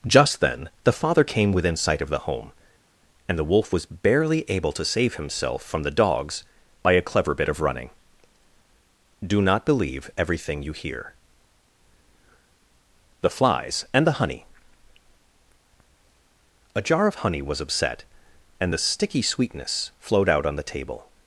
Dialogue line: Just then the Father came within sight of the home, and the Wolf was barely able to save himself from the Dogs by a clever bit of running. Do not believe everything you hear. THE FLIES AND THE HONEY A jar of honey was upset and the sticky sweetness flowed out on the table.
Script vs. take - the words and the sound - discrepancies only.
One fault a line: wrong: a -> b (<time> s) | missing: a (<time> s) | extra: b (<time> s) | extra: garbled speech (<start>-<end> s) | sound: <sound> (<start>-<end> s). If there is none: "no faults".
no faults